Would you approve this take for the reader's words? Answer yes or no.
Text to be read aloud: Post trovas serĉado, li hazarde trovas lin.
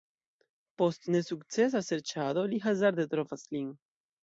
no